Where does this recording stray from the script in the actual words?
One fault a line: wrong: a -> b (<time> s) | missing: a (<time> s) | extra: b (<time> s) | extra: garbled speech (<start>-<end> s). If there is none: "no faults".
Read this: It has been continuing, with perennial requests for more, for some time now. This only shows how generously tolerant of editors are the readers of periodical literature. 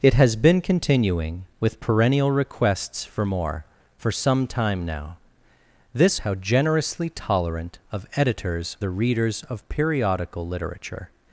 missing: only shows (6.2 s)
missing: are (8.8 s)